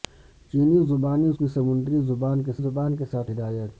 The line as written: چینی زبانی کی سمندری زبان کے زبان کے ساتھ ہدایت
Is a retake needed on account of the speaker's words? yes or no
no